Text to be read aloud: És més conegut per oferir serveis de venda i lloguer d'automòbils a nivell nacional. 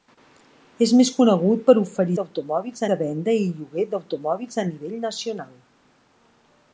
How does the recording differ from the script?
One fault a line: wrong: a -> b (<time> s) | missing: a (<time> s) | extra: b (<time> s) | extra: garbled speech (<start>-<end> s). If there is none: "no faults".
wrong: serveis -> d'automòbils (2.2 s)